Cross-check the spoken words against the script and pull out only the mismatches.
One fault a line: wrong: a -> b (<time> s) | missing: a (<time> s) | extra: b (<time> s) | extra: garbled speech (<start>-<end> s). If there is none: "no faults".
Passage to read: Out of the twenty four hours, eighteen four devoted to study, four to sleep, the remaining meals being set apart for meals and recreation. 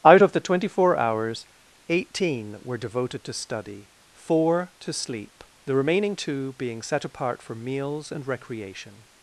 wrong: four -> were (2.6 s)
wrong: meals -> two (6.1 s)